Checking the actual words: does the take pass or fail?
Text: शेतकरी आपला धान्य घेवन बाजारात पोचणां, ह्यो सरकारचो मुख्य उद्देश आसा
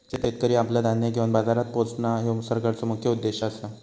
pass